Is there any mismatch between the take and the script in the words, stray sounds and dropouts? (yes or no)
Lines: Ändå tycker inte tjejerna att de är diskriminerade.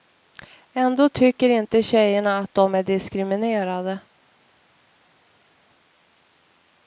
no